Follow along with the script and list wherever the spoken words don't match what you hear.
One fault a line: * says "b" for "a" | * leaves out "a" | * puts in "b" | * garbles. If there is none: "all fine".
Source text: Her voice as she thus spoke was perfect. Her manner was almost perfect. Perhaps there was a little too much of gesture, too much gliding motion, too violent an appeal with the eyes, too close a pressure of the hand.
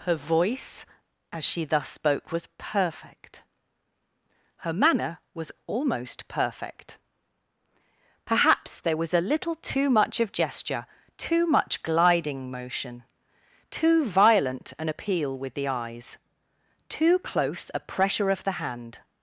all fine